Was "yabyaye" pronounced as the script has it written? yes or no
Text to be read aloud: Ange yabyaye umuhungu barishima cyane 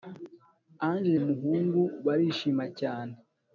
no